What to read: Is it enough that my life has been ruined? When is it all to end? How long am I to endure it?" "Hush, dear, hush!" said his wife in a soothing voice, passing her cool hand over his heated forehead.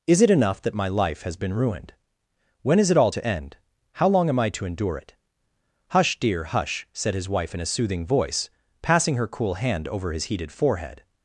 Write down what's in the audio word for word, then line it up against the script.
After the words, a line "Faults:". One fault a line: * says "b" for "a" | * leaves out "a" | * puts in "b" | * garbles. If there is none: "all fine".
Is it enough that my life has been ruined? When is it all to end? How long am I to endure it?" "Hush, dear, hush!" said his wife in a soothing voice, passing her cool hand over his heated forehead.
Faults:
all fine